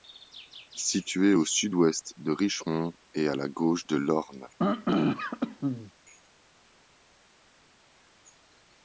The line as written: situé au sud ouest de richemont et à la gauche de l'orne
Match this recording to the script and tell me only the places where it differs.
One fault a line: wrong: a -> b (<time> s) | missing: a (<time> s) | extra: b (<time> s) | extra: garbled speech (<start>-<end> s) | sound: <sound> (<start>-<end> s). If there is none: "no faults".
sound: throat clearing (4.6-5.9 s)